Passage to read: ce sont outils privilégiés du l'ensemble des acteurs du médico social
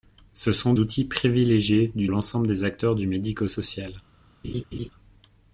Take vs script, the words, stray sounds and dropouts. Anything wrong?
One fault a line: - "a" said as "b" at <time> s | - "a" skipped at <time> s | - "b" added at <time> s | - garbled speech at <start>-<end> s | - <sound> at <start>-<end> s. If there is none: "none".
- laugh at 4.4-4.9 s